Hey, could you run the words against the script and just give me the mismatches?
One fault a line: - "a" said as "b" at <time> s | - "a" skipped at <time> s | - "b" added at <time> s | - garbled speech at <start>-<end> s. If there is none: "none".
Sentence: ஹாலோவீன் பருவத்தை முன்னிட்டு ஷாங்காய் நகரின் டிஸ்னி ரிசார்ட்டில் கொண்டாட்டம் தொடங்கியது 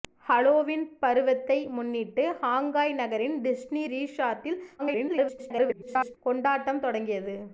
- garbled speech at 4.8-6.2 s